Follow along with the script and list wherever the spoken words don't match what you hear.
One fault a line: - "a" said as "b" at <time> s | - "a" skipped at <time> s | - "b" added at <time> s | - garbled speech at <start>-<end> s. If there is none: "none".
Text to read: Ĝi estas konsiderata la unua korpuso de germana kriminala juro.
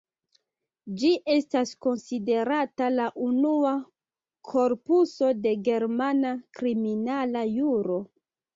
none